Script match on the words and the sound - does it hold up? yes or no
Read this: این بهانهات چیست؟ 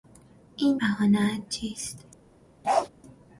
no